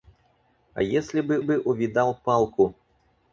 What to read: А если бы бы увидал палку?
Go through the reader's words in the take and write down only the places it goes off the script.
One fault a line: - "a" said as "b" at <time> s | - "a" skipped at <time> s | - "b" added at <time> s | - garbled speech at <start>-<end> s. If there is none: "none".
none